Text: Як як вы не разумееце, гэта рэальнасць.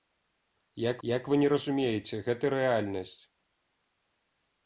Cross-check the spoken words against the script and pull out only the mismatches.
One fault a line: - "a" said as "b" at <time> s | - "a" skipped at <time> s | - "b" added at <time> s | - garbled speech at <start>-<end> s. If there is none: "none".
none